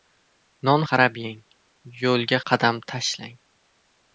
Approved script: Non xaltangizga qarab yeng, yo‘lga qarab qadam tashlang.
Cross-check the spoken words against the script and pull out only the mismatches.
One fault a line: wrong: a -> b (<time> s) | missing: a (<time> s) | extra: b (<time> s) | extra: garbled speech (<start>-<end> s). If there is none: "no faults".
missing: xaltangizga (0.8 s)
missing: qarab (2.4 s)